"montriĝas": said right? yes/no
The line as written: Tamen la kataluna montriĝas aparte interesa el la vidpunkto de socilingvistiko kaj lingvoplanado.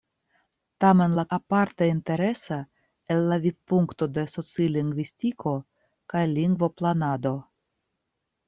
no